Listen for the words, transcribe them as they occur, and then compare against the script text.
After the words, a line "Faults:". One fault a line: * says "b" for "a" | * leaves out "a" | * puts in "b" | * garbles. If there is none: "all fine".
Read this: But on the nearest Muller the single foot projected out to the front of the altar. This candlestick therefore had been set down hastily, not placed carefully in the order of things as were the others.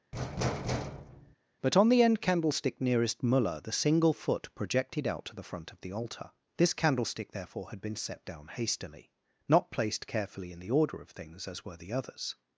But on the end candlestick nearest Muller the single foot projected out to the front of the altar. This candlestick therefore had been set down hastily, not placed carefully in the order of things as were the others.
Faults:
* puts in "end candlestick"